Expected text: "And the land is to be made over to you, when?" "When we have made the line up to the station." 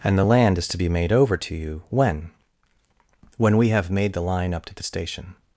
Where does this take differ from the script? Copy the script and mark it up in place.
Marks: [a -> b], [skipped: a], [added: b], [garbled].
"And the land is to be made over to you, when?" "When we have made the line up to the station."